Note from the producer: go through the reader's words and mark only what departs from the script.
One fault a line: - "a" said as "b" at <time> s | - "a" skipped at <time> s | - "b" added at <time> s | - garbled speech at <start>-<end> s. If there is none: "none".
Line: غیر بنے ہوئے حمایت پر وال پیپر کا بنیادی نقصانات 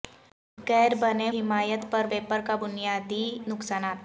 - "ہوئے" skipped at 1.3 s
- "وال" skipped at 2.1 s